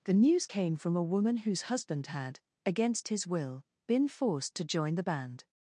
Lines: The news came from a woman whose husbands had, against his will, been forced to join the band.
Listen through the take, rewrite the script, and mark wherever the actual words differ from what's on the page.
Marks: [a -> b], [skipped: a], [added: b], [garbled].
The news came from a woman whose [husbands -> husband] had, against his will, been forced to join the band.